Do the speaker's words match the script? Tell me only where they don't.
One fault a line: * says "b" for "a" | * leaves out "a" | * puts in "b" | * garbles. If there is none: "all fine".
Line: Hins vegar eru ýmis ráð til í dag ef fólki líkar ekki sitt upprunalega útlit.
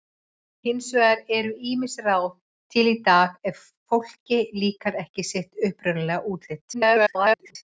* garbles